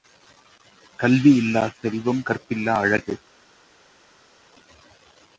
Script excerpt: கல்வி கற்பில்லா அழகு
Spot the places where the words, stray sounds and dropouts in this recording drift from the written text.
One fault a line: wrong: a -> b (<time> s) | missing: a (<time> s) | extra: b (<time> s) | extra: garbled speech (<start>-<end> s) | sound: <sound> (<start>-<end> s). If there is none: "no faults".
extra: இல்லாச் செல்வம் (1.4 s)